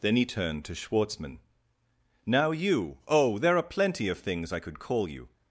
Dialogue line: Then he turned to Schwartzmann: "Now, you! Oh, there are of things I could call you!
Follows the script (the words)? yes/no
no